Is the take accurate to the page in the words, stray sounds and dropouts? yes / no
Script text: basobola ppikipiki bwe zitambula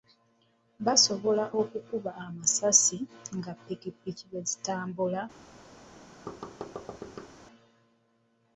no